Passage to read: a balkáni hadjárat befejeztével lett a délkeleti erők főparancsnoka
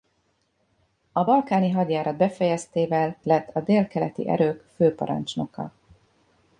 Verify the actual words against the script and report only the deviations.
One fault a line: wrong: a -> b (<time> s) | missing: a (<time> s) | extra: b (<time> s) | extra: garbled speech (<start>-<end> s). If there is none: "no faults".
no faults